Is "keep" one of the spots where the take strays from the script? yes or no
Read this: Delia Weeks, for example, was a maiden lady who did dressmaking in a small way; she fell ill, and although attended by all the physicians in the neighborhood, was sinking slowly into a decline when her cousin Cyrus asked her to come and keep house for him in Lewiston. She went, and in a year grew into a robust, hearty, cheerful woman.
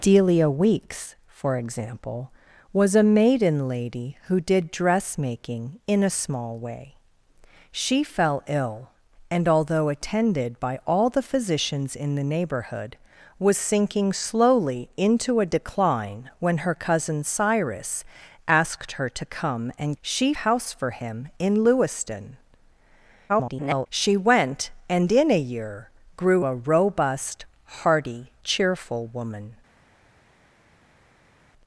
yes